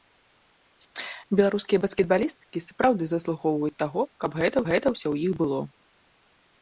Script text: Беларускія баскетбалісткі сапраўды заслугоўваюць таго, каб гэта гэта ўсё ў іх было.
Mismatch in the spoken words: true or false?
false